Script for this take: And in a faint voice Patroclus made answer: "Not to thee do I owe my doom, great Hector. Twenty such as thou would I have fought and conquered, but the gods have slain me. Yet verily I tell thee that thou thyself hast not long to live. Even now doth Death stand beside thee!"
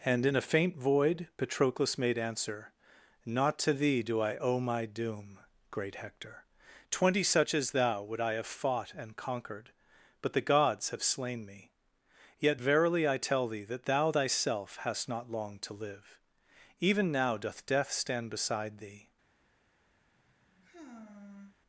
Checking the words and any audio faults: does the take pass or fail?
fail